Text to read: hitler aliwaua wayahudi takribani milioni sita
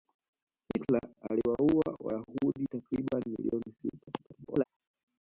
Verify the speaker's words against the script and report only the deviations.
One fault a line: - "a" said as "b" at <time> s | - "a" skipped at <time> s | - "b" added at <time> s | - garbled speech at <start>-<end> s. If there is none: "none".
- garbled speech at 4.2-4.6 s